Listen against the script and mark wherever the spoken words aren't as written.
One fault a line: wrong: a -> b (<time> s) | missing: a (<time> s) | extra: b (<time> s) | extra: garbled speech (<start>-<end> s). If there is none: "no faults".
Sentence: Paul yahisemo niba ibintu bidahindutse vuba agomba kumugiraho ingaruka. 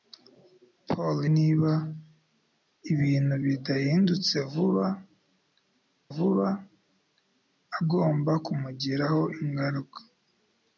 missing: yahisemo (1.2 s)
extra: vuba (6.1 s)